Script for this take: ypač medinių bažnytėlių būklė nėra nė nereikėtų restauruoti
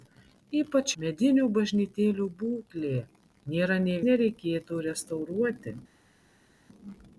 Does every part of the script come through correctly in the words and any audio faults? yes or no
yes